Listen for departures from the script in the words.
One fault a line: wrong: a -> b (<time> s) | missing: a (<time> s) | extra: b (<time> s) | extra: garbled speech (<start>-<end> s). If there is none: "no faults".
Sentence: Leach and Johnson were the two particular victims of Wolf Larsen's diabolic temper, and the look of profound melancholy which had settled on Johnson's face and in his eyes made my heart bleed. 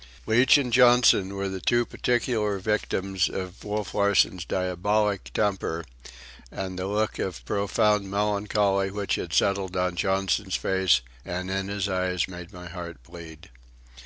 no faults